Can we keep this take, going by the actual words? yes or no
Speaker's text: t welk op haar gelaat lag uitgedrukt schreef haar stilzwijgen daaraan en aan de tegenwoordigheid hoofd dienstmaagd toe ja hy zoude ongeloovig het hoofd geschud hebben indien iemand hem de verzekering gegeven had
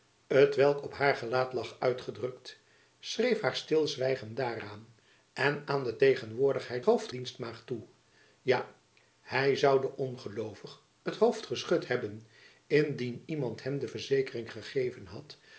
yes